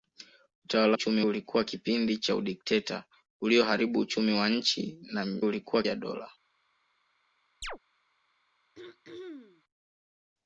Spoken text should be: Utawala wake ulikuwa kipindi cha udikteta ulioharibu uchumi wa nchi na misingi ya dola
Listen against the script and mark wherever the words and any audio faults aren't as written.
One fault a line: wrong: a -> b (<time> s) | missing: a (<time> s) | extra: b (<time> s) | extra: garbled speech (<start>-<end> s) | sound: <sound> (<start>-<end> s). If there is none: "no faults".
wrong: wake -> uchumi (0.9 s)
wrong: misingi -> ulikuwa (5.4 s)
sound: chirp (7.6-7.8 s)
sound: throat clearing (8.7-9.6 s)